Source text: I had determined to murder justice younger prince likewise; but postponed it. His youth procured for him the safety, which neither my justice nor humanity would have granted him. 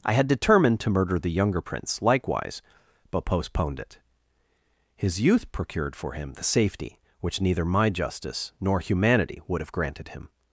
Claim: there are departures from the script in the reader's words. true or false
true